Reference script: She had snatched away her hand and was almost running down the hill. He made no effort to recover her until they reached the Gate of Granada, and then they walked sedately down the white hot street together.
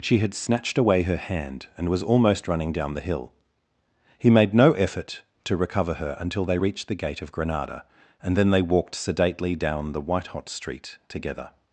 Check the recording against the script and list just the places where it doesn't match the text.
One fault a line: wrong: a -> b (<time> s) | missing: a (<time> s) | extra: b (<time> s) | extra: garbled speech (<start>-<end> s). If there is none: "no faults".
no faults